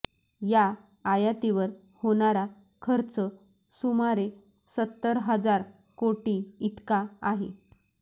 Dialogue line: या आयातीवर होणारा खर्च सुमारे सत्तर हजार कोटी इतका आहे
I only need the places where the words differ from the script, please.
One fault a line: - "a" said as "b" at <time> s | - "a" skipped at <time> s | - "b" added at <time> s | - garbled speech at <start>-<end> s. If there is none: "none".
none